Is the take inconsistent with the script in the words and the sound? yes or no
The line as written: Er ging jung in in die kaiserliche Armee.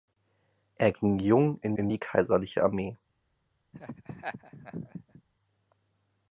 yes